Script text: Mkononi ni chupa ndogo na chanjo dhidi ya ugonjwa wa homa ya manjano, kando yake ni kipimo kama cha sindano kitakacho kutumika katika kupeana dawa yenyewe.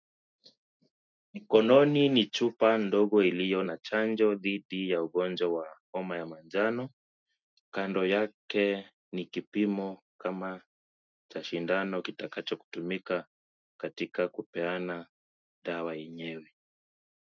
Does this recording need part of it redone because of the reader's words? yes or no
yes